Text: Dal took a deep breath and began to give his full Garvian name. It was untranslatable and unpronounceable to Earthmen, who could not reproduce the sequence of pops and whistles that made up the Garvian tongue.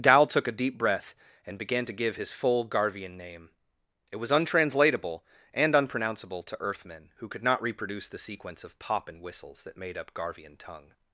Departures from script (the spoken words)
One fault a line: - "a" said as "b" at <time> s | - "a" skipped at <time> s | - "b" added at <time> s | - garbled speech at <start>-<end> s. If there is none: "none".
- "pops" said as "pop" at 8.8 s
- "the" skipped at 10.1 s